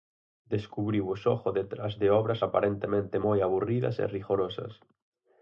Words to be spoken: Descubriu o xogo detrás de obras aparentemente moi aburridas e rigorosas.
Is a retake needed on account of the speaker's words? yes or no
no